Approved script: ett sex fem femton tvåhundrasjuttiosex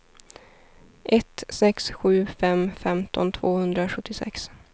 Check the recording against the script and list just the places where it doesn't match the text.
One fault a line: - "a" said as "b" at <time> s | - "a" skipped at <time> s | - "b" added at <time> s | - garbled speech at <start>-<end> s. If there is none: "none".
- "sju" added at 1.9 s